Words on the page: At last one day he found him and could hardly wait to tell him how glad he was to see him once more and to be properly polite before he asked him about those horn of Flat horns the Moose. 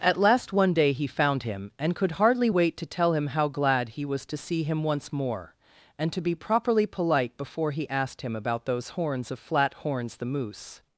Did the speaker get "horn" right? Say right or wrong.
wrong